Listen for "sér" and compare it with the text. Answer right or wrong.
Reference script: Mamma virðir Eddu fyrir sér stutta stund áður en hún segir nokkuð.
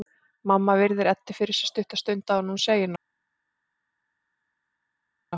right